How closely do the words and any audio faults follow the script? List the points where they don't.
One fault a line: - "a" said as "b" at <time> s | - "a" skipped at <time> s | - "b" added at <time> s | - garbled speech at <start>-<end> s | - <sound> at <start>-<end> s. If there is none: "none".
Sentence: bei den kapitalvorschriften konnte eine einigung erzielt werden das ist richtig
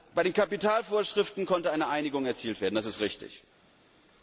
none